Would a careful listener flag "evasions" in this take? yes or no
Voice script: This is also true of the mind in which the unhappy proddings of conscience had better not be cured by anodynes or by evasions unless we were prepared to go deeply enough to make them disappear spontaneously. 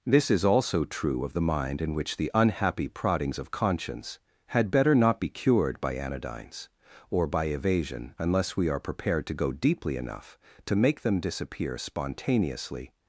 yes